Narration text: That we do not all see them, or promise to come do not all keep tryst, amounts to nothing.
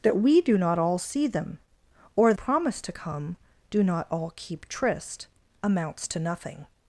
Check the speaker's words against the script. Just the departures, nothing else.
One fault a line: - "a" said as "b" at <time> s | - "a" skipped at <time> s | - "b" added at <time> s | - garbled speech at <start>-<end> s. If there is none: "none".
none